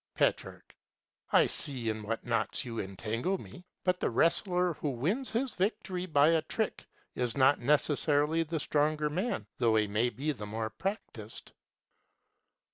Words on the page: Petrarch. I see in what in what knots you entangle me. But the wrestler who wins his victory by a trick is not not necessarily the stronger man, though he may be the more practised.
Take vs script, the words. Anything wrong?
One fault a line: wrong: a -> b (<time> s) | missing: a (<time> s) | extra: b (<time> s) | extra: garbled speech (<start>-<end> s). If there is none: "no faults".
missing: in what (2.2 s)
missing: not (7.6 s)